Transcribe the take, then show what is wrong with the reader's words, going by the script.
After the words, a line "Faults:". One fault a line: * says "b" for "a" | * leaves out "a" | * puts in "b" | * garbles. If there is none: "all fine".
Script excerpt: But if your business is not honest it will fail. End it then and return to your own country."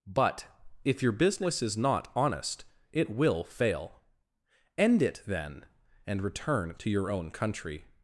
But if your business is not honest it will fail. End it then and return to your own country."
Faults:
all fine